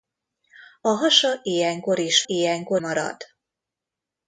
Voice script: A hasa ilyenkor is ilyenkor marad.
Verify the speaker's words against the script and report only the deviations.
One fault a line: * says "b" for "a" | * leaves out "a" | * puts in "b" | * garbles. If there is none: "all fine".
all fine